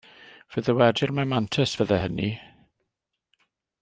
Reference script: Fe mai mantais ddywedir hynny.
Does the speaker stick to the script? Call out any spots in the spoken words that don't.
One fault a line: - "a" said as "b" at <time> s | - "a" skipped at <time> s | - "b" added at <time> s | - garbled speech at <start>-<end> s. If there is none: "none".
- "ddywedir" added at 0.7 s
- "ddywedir" said as "fyddai" at 1.8 s